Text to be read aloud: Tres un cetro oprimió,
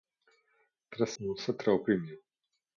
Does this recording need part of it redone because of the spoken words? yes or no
no